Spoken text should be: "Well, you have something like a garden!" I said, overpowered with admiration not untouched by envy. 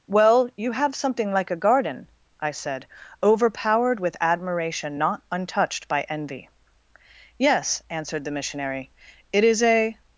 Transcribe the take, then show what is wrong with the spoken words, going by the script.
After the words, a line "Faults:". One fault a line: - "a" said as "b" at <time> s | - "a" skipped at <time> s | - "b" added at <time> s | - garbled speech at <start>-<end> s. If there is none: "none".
"Well, you have something like a garden!" I said, overpowered with admiration not untouched by envy. "Yes," answered the missionary, "it is a
Faults:
- "Yes answered the missionary it is a" added at 7.4 s